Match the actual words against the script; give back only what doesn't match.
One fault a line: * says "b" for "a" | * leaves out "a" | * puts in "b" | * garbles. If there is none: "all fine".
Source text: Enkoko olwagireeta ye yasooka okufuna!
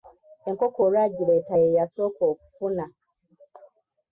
all fine